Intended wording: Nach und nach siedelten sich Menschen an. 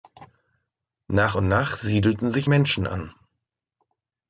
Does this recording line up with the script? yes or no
yes